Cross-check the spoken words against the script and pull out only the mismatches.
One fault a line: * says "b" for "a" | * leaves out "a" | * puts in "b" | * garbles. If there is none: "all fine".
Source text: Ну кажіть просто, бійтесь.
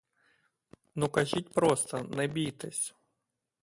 * puts in "не"